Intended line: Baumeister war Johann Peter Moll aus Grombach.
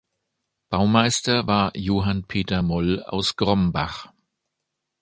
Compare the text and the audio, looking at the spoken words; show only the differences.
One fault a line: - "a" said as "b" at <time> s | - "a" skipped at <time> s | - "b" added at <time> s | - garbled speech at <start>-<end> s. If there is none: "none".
none